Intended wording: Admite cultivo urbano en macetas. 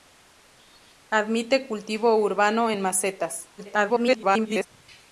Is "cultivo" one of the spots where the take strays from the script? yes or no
no